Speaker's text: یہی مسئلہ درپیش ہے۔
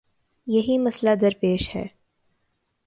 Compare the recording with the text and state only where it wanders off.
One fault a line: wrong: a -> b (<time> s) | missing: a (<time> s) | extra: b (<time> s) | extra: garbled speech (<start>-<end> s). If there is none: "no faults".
no faults